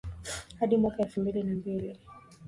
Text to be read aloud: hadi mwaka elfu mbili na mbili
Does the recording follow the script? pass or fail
pass